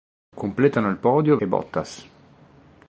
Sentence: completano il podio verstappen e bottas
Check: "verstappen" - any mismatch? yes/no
yes